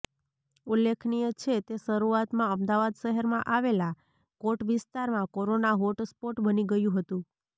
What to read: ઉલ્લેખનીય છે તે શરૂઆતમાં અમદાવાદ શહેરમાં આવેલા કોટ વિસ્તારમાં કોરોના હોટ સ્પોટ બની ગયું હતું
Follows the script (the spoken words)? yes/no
yes